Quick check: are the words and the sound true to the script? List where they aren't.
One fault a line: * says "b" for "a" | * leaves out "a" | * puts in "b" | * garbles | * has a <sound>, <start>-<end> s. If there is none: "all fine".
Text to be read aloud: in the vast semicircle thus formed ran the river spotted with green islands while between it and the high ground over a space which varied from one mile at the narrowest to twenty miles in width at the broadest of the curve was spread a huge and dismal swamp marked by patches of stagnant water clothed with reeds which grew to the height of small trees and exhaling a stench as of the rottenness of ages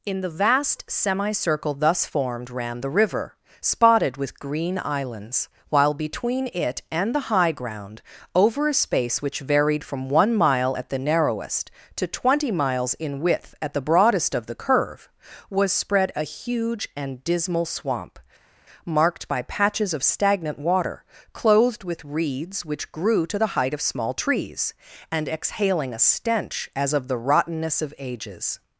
all fine